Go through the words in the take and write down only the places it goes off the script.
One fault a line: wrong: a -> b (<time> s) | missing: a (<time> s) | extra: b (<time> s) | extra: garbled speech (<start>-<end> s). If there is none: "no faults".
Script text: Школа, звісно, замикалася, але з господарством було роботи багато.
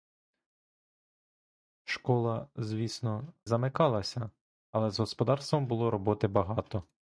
no faults